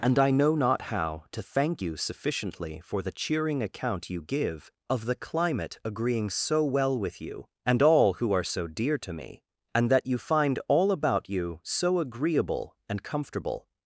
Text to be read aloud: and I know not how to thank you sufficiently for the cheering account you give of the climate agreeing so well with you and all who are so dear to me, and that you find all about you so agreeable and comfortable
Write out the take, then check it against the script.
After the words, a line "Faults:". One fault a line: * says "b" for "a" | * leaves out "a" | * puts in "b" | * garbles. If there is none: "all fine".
and I know not how to thank you sufficiently for the cheering account you give of the climate agreeing so well with you and all who are so dear to me, and that you find all about you so agreeable and comfortable
Faults:
all fine